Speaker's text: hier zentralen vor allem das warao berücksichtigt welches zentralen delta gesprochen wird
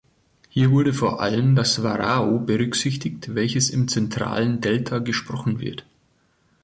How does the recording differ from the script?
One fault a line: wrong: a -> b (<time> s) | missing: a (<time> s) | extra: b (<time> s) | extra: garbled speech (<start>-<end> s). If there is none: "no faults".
wrong: zentralen -> wurde (0.7 s)
extra: im (3.7 s)